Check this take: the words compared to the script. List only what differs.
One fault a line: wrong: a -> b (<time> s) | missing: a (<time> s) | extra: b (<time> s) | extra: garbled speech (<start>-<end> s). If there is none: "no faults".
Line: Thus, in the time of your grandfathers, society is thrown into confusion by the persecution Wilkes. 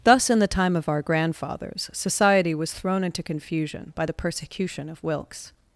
wrong: your -> our (0.9 s)
wrong: is -> was (2.5 s)
extra: of (4.9 s)